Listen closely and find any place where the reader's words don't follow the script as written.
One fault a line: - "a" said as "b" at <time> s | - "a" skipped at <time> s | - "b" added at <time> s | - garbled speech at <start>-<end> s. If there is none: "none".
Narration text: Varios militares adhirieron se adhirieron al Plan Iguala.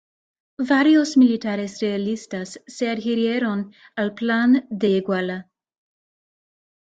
- "adhirieron" said as "realistas" at 1.8 s
- "de" added at 4.7 s